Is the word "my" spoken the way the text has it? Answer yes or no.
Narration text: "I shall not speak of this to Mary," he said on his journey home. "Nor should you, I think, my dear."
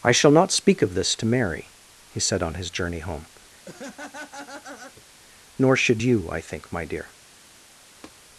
yes